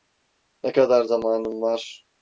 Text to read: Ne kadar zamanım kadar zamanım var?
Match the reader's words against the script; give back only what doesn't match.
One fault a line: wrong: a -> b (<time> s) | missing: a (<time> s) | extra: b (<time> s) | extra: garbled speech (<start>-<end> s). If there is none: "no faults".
missing: kadar zamanım (1.6 s)